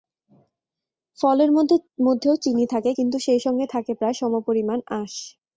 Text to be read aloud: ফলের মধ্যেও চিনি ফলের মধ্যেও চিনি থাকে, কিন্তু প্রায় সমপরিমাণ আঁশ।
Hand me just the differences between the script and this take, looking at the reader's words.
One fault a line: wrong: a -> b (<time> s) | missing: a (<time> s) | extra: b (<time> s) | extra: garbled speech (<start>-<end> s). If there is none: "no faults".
wrong: ফলের মধ্যেও চিনি -> থাকে কিন্তু সেই সঙ্গে (2.7 s)
missing: কিন্তু (3.9 s)